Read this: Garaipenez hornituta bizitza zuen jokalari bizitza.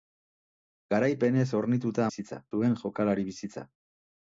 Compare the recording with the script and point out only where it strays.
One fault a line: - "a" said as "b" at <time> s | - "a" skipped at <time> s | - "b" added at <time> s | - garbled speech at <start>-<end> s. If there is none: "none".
none